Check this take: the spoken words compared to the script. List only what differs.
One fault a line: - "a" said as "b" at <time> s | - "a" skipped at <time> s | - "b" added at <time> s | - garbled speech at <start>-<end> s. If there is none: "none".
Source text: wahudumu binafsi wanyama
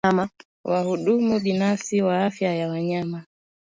- "wa afya ya" added at 2.0 s